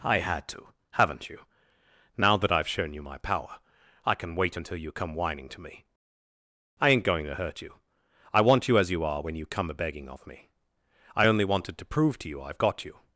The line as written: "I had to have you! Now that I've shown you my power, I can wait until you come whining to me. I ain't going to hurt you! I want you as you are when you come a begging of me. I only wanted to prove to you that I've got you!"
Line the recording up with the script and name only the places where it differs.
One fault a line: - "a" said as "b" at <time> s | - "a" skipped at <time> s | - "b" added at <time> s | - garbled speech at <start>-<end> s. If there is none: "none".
- "have" said as "haven't" at 0.9 s
- "that" skipped at 12.4 s